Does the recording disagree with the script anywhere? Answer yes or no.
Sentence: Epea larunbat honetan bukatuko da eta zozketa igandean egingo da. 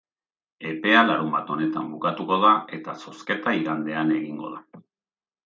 no